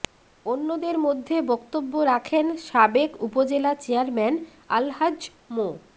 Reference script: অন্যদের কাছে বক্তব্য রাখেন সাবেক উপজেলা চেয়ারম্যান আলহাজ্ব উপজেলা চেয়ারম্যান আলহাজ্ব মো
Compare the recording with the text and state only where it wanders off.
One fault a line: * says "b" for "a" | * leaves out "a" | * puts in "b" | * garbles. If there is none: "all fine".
* says "মধ্যে" for "কাছে"
* leaves out "উপজেলা চেয়ারম্যান আলহাজ্ব"